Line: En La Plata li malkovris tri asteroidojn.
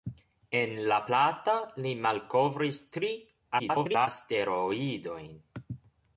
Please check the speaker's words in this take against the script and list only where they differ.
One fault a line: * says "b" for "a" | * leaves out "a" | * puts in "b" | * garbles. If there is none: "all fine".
* garbles